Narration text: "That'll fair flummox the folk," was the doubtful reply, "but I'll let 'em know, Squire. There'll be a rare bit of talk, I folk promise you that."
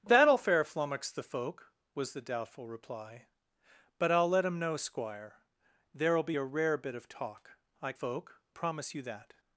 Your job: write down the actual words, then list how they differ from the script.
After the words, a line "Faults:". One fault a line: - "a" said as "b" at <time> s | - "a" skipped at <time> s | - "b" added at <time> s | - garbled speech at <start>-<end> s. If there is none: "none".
"That'll fair flummox the folk," was the doubtful reply, "but I'll let 'em know, Squire. There'll be a rare bit of talk, I folk promise you that."
Faults:
none